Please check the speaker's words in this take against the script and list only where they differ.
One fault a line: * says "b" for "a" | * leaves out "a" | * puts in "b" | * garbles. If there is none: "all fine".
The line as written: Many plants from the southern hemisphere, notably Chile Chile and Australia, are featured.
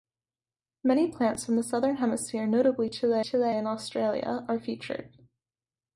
all fine